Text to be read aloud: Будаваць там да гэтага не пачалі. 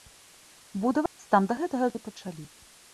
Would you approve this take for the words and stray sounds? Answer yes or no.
no